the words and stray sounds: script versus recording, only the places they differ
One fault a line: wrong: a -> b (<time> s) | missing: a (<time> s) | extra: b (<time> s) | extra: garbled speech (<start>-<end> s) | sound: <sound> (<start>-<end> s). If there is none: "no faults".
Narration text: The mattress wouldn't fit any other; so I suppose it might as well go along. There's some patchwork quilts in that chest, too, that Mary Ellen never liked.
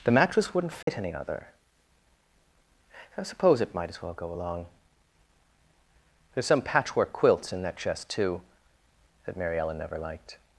sound: dropout (0.8-0.9 s)
missing: so (1.5 s)